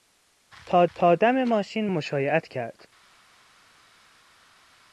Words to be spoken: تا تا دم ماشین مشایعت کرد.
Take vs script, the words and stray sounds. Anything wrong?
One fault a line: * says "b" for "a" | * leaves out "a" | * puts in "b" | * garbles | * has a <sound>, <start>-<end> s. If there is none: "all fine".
all fine